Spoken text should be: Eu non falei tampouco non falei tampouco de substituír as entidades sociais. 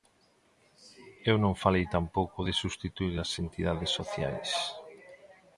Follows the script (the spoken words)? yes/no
no